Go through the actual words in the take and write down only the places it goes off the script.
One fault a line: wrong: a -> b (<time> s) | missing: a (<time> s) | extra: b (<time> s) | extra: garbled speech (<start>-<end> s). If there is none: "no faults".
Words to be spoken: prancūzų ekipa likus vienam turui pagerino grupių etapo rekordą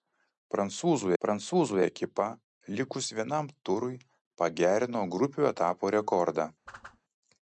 extra: prancūzų (1.2 s)